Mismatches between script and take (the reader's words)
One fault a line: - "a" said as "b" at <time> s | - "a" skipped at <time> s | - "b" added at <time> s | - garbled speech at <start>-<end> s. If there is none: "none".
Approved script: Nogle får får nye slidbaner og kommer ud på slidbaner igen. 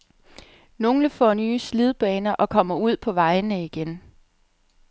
- "får" skipped at 1.3 s
- "slidbaner" said as "vejene" at 3.1 s